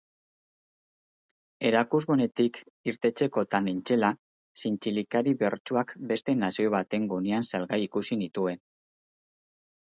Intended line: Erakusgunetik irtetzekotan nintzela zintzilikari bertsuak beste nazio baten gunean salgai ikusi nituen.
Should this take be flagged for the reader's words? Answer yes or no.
no